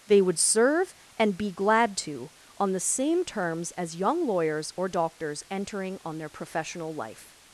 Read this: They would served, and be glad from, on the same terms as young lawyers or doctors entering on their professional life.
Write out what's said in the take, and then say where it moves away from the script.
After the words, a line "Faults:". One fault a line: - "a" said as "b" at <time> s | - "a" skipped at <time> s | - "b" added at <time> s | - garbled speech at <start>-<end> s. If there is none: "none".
They would serve, and be glad to, on the same terms as young lawyers or doctors entering on their professional life.
Faults:
- "served" said as "serve" at 0.4 s
- "from" said as "to" at 2.0 s